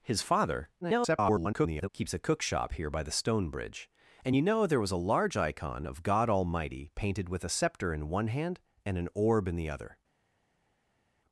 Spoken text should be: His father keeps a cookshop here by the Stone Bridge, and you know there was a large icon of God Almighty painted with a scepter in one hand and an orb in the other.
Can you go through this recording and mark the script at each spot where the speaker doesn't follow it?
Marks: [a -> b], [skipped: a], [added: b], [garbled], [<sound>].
His father [garbled] keeps a cookshop here by the Stone Bridge, and you know there was a large icon of God Almighty painted with a scepter in one hand and an orb in the other.